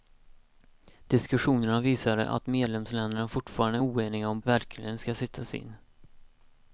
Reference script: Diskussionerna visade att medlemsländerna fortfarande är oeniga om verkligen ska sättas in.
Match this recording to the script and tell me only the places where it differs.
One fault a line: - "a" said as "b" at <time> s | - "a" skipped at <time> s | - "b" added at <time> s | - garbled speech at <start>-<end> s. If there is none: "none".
none